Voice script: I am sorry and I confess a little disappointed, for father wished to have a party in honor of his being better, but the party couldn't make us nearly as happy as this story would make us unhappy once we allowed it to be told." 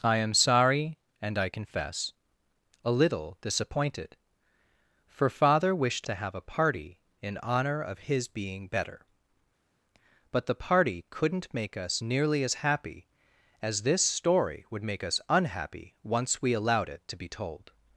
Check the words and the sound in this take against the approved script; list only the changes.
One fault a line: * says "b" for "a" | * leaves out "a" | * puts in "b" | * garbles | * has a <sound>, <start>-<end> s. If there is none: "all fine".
all fine